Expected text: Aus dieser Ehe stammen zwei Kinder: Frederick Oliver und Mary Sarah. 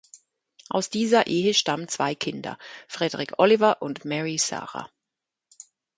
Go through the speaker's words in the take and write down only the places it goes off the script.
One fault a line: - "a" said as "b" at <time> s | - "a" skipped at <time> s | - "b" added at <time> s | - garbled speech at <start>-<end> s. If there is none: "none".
none